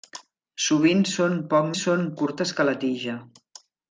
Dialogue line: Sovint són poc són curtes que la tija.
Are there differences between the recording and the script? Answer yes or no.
no